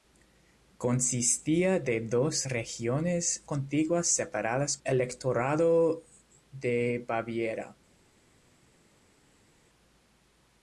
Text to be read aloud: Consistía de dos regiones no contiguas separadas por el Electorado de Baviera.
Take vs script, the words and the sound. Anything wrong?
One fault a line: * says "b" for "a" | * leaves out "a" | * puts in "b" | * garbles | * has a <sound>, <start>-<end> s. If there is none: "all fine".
* leaves out "no"
* leaves out "por el"